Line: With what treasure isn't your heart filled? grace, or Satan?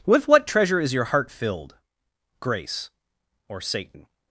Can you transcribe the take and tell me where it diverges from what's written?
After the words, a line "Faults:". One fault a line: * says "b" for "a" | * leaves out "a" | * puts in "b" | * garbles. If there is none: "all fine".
With what treasure is your heart filled? grace, or Satan?
Faults:
* says "is" for "isn't"